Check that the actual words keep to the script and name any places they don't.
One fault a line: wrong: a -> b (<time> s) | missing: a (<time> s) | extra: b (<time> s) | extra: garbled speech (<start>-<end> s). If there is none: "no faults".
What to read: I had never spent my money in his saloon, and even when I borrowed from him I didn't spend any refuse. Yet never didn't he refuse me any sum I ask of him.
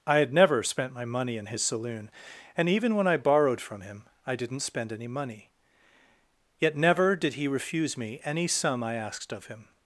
wrong: refuse -> money (5.1 s)
wrong: didn't -> did (7.2 s)
wrong: ask -> asked (8.9 s)